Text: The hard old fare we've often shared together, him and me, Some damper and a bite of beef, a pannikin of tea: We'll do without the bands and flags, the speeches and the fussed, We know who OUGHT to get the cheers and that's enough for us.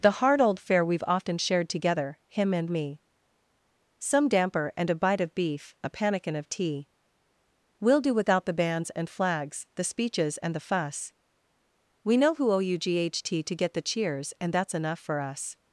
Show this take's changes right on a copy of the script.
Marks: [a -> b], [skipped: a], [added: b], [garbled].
The hard old fare we've often shared together, him and me, Some damper and a bite of beef, a pannikin of tea: We'll do without the bands and flags, the speeches and the [fussed, -> fuss] We know who OUGHT to get the cheers and that's enough for us.